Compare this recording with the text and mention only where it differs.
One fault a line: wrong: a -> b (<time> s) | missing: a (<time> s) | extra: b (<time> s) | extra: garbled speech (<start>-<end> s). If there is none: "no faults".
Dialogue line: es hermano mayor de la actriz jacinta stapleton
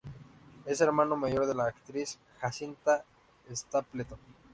no faults